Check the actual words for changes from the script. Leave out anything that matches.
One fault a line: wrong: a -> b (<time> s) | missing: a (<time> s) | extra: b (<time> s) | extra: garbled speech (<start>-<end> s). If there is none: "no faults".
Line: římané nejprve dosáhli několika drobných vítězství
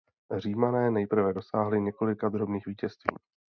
no faults